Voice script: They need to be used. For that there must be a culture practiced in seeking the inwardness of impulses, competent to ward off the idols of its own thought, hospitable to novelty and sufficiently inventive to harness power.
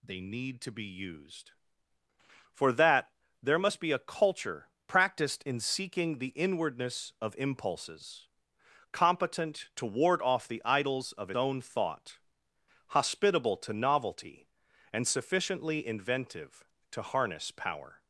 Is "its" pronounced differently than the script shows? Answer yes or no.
yes